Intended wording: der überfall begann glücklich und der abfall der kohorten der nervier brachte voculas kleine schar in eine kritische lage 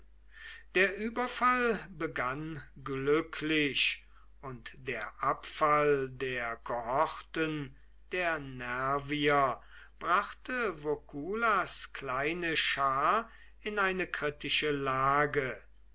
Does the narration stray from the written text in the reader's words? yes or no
no